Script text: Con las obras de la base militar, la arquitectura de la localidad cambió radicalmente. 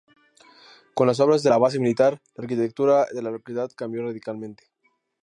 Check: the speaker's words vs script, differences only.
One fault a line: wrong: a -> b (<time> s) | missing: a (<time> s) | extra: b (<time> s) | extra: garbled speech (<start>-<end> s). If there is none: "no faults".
no faults